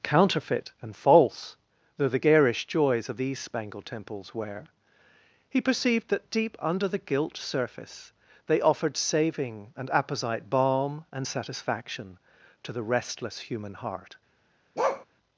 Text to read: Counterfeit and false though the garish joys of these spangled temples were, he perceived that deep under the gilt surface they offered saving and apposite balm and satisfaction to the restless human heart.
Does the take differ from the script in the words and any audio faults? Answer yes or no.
yes